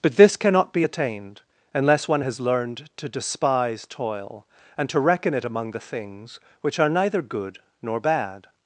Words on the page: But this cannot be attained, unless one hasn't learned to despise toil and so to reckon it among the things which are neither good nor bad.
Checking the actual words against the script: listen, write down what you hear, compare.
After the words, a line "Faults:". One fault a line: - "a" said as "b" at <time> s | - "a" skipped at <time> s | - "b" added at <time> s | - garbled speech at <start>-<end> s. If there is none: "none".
But this cannot be attained, unless one has learned to despise toil and to reckon it among the things which are neither good nor bad.
Faults:
- "hasn't" said as "has" at 2.2 s
- "so" skipped at 4.9 s